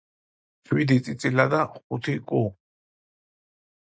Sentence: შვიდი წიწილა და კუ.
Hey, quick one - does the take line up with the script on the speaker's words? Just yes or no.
no